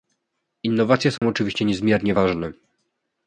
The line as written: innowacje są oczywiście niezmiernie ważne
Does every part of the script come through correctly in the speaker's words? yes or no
yes